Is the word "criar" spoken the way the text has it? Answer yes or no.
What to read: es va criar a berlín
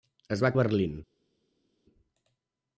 no